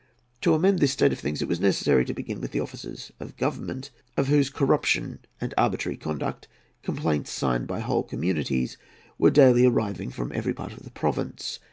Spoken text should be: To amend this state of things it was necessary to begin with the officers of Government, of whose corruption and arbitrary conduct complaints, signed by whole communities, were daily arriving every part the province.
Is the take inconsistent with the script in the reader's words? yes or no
yes